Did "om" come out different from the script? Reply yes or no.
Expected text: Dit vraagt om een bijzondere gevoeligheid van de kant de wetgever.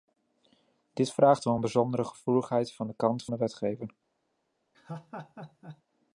no